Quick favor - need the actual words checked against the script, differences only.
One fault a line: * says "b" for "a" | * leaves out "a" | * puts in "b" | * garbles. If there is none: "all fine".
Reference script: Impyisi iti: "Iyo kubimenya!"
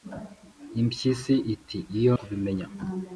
all fine